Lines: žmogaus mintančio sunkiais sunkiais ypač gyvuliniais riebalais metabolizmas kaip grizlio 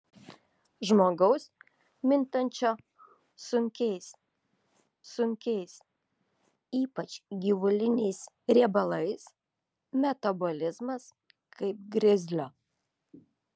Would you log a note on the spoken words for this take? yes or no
no